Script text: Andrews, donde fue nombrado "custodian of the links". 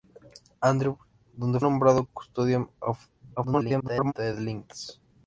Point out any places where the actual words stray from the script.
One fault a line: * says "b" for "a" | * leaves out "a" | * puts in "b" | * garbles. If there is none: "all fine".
* leaves out "fue"
* garbles